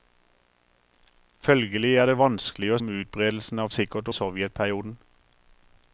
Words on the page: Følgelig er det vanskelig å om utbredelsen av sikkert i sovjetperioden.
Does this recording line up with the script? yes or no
yes